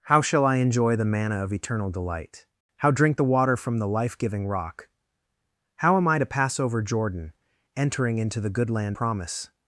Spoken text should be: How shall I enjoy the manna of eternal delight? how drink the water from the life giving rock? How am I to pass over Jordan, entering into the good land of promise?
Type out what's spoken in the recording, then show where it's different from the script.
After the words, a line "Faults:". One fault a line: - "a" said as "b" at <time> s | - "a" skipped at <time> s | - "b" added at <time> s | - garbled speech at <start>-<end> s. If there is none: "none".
How shall I enjoy the manna of eternal delight? how drink the water from the life giving rock? How am I to pass over Jordan, entering into the good land promise?
Faults:
- "of" skipped at 9.0 s